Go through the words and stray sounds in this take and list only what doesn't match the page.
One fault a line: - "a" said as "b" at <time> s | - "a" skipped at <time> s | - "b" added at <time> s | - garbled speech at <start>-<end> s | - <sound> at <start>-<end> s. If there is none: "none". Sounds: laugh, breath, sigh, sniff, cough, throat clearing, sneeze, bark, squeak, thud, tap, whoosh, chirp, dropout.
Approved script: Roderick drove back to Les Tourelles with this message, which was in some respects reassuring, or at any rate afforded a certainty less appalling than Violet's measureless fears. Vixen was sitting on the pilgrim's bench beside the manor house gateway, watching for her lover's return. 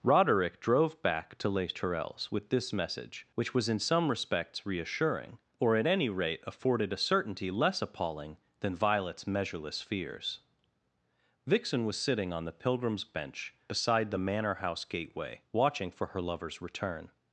none